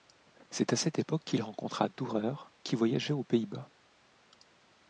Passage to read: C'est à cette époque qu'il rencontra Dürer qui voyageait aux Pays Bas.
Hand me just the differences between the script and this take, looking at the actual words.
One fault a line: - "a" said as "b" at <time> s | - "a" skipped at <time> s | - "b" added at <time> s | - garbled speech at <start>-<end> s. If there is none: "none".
none